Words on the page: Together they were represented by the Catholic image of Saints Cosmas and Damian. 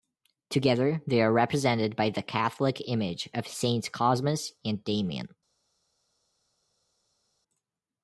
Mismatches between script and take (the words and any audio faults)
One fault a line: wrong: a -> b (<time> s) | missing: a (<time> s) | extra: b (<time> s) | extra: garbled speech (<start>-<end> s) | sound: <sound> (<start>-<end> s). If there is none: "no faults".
wrong: were -> are (1.2 s)